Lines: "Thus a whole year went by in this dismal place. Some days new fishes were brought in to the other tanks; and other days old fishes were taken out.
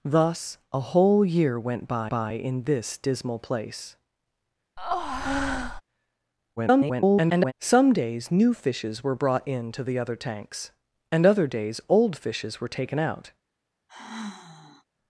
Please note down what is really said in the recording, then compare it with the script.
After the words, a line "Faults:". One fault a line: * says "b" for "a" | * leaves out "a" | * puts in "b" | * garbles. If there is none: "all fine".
"Thus a whole year went by by in this dismal place. [garbled] Some days new fishes were brought in to the other tanks; and other days old fishes were taken out.
Faults:
* puts in "by"
* garbles